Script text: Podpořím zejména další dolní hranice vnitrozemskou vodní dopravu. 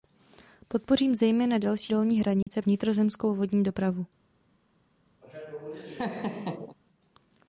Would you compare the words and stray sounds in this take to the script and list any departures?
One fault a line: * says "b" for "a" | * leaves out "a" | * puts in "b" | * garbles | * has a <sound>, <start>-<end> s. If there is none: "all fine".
* has a dropout, 2.4-2.5 s
* has a laugh, 5.2-6.8 s